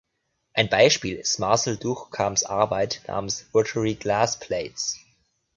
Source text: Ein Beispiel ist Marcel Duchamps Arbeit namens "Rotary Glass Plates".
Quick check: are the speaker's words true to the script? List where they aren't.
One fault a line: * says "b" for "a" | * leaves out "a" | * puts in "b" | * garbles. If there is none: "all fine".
all fine